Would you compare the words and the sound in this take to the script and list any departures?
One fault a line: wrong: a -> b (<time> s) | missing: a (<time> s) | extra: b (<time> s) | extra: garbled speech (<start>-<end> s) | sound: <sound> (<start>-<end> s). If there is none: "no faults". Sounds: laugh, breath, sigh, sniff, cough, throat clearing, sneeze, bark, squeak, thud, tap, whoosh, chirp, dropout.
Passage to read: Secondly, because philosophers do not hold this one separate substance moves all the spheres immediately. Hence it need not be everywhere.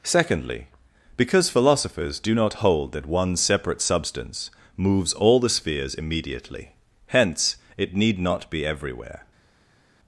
wrong: this -> that (2.9 s)